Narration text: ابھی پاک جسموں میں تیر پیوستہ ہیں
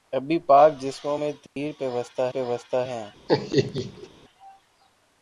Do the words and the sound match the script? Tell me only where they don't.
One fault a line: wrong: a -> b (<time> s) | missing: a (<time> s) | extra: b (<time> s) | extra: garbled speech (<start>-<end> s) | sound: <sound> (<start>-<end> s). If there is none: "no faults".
sound: dropout (1.5-1.6 s)
extra: پیوستہ (2.3 s)
sound: laugh (3.3-4.1 s)